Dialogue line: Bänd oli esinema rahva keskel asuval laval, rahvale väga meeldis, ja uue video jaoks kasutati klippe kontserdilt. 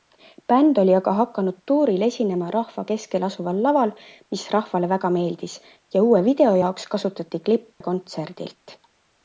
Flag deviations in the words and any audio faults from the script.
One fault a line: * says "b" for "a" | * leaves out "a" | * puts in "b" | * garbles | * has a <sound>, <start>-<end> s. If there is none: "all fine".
* puts in "aga hakanud tuuril"
* puts in "mis"
* has a dropout, 7.7-7.8 s